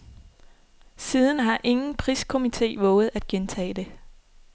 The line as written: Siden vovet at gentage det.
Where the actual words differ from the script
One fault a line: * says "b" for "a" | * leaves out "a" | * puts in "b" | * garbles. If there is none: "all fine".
* puts in "har ingen priskomite"